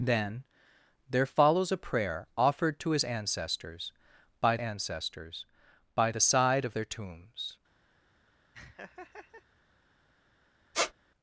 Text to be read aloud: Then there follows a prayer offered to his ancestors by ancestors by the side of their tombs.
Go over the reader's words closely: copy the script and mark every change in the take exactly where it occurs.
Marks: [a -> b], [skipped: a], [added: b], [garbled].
Then there follows a prayer offered to his ancestors by ancestors by the side of their tombs.